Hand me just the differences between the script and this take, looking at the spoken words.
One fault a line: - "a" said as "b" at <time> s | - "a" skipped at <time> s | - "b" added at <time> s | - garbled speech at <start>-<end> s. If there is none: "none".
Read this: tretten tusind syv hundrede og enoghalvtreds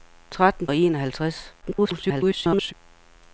- "tusind syv hundrede" skipped at 0.7 s
- garbled speech at 1.6-2.7 s